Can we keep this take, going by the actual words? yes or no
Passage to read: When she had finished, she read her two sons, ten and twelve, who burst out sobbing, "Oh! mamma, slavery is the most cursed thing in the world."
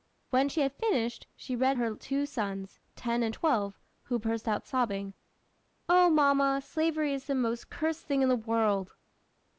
yes